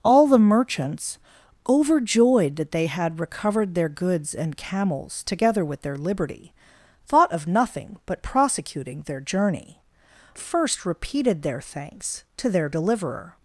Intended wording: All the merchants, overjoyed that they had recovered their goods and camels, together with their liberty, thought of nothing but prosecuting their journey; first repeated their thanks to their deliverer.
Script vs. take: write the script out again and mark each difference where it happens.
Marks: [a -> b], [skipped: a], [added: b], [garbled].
All the merchants, overjoyed that they had recovered their goods and camels, together with their liberty, thought of nothing but prosecuting their journey; first repeated their thanks to their deliverer.